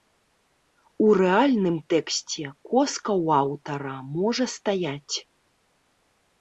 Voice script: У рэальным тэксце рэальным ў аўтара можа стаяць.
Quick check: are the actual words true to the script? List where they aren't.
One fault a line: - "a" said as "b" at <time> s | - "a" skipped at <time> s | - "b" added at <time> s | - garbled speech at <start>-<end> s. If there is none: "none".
- "рэальным" said as "коска" at 2.7 s